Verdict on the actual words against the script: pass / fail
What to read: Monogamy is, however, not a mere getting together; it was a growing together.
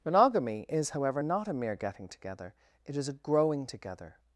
fail